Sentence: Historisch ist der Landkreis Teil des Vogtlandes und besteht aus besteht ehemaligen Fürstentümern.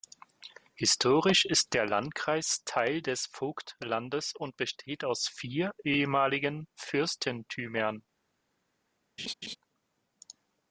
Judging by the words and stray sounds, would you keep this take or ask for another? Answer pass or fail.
fail